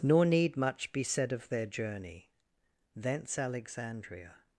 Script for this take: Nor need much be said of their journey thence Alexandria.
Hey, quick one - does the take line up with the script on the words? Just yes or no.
yes